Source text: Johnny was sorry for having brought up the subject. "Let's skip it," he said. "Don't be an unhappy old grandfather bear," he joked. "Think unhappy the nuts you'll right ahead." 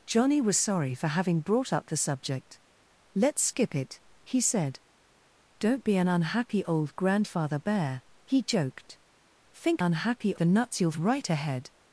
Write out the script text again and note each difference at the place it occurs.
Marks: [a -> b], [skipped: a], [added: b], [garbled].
Johnny was sorry for having brought up the subject. "Let's skip it," he said. "Don't be an unhappy old grandfather bear," he joked. "Think unhappy the nuts you'll right ahead."